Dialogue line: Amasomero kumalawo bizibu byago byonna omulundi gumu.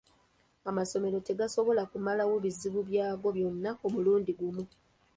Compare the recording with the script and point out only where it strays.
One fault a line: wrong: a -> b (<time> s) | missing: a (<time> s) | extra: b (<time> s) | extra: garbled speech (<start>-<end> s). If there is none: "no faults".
extra: tegasobola (1.3 s)